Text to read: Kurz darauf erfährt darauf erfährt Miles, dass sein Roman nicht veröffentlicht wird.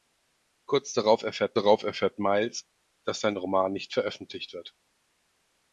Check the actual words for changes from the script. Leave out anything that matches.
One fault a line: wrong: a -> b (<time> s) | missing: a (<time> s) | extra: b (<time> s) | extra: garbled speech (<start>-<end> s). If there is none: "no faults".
no faults